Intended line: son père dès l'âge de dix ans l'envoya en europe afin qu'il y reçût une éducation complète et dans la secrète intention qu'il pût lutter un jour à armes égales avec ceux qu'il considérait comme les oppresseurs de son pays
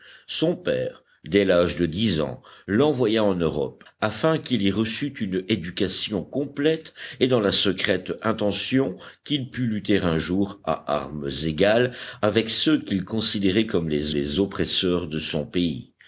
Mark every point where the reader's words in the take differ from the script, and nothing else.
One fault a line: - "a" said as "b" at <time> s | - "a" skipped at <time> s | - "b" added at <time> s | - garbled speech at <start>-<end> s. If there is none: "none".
- "les" added at 14.1 s